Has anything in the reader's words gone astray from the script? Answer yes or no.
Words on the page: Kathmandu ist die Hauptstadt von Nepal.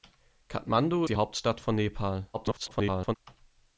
yes